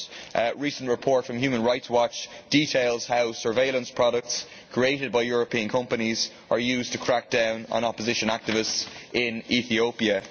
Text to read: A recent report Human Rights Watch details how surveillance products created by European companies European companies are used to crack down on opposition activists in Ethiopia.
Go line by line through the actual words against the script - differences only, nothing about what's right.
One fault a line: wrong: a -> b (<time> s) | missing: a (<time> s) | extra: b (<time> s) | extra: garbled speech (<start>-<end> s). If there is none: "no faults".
extra: from (1.2 s)
missing: European companies (6.3 s)